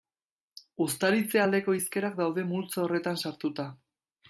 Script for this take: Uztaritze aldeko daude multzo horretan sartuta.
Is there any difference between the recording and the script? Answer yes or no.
yes